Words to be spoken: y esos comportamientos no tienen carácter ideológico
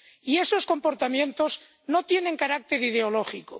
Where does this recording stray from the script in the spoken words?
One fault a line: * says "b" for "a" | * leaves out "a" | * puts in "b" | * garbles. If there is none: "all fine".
all fine